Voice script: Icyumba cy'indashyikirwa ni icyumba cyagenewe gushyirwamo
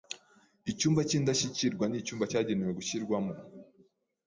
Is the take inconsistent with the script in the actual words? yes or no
no